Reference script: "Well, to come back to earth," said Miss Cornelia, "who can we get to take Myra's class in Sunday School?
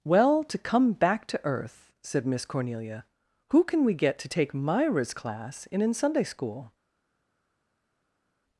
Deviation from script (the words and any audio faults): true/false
true